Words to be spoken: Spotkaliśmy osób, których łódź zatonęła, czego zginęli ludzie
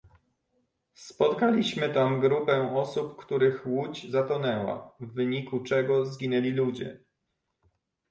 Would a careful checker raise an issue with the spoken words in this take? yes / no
yes